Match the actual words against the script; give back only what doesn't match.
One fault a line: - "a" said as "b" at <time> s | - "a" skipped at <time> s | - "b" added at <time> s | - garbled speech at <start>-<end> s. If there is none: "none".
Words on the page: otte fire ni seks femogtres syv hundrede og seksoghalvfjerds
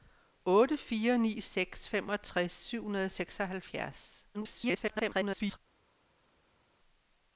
- garbled speech at 4.3-5.6 s